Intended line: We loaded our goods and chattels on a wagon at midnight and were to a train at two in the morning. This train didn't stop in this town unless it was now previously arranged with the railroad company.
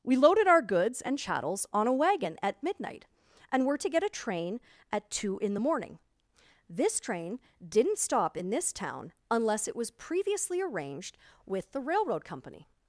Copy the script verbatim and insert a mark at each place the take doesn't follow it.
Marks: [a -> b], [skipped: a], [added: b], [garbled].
We loaded our goods and chattels on a wagon at midnight and were to [added: get] a train at two in the morning. This train didn't stop in this town unless it was [skipped: now] previously arranged with the railroad company.